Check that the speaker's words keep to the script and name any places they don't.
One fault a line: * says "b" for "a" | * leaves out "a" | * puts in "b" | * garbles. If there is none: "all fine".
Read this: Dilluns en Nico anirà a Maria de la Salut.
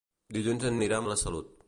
* leaves out "Nico"
* leaves out "Maria"